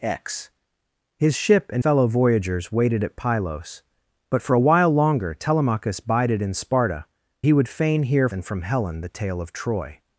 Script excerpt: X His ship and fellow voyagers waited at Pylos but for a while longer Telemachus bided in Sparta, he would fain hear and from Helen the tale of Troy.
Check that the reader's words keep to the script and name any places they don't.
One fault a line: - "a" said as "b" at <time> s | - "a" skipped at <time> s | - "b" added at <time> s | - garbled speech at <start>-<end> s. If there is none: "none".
none